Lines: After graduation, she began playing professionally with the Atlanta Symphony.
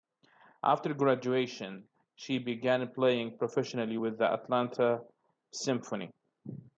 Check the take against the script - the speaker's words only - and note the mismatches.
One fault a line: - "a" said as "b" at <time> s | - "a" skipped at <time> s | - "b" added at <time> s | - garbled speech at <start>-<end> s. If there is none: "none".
none